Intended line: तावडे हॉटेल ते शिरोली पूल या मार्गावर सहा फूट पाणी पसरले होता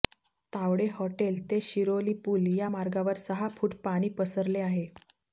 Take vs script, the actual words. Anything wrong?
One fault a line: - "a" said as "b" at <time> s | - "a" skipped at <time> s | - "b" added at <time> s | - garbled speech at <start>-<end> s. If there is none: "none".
- "होता" said as "आहे" at 4.6 s